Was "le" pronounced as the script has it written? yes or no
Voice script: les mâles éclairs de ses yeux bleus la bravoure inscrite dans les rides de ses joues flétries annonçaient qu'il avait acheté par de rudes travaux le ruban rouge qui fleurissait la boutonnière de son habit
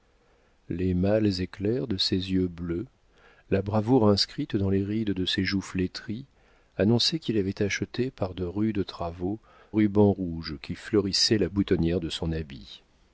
no